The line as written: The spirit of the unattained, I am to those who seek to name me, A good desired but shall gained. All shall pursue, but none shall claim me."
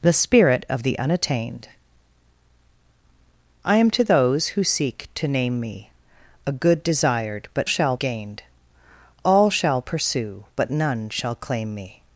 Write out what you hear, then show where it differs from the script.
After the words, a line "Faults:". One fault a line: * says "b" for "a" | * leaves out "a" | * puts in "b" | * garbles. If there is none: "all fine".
The spirit of the unattained, I am to those who seek to name me, A good desired but shall gained. All shall pursue, but none shall claim me."
Faults:
all fine